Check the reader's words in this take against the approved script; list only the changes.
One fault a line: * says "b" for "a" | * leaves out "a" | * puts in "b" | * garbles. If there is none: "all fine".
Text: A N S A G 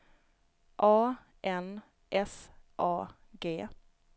all fine